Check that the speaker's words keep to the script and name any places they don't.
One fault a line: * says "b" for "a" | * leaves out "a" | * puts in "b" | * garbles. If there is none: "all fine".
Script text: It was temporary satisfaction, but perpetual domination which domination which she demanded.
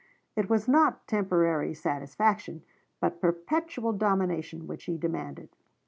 * puts in "not"
* leaves out "domination which"